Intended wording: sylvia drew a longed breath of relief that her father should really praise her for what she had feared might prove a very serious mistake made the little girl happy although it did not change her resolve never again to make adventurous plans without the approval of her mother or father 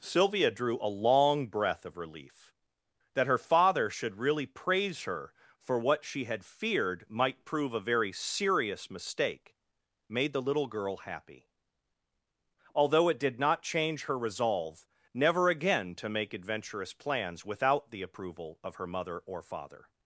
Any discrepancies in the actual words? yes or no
yes